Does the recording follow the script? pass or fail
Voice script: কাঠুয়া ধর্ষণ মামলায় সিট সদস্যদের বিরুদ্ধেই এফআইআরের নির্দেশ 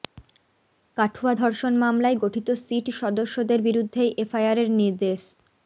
fail